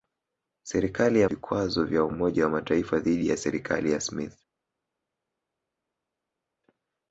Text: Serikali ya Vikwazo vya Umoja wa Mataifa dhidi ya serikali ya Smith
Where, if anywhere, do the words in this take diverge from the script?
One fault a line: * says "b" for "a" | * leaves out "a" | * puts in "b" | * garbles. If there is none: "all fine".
all fine